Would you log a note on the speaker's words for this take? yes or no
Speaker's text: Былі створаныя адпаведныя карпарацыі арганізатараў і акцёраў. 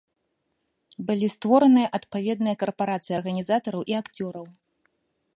no